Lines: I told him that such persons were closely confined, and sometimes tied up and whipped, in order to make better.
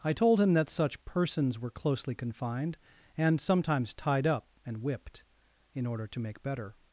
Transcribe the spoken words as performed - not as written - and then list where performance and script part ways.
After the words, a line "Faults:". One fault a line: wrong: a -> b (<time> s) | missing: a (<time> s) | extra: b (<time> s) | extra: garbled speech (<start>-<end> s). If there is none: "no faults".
I told him that such persons were closely confined, and sometimes tied up and whipped, in order to make better.
Faults:
no faults